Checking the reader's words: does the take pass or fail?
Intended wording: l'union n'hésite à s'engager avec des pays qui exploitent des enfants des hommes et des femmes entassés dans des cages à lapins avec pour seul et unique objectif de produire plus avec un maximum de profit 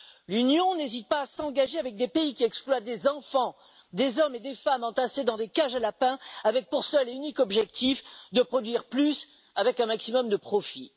fail